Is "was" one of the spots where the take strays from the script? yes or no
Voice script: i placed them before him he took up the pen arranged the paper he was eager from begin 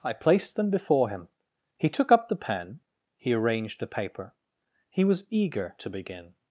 no